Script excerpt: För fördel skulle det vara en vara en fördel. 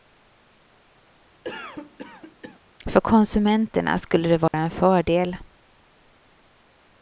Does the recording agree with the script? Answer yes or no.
no